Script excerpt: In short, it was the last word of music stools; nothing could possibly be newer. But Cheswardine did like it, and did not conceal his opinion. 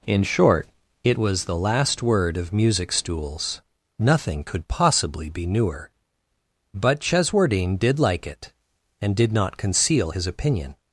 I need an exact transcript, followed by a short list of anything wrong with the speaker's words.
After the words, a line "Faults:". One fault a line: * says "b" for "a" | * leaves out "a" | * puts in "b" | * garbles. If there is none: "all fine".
In short, it was the last word of music stools; nothing could possibly be newer. But Cheswardine did like it, and did not conceal his opinion.
Faults:
all fine